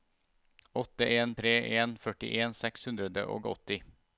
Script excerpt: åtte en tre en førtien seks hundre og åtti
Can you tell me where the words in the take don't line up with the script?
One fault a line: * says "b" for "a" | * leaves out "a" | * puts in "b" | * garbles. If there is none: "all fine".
all fine